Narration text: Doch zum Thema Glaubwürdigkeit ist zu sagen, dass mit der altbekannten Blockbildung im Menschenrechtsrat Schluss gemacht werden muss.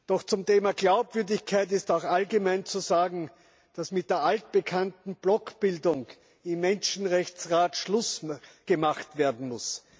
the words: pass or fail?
fail